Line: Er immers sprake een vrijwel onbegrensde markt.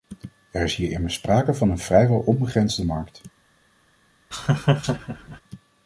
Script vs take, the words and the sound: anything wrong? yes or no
yes